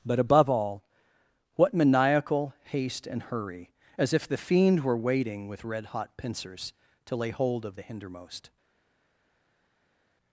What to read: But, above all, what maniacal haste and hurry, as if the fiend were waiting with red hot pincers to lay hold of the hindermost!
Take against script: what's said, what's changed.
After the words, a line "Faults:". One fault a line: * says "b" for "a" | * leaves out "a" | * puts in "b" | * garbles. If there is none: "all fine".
But, above all, what maniacal haste and hurry, as if the fiend were waiting with red hot pincers to lay hold of the hindermost!
Faults:
all fine